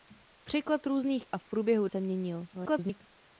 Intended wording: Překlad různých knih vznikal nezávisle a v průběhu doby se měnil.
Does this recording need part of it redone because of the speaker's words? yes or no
yes